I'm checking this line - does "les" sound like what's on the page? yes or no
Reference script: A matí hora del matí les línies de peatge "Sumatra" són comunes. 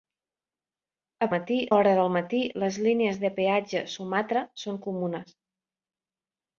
yes